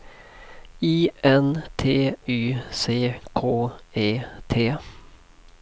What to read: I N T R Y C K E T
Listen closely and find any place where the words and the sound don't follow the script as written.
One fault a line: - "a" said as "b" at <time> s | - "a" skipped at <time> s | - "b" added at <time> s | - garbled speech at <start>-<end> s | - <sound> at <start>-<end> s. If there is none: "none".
- "R" skipped at 2.1 s